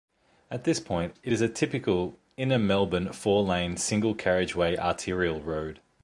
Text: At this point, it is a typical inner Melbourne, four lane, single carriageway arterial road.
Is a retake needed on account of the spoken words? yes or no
no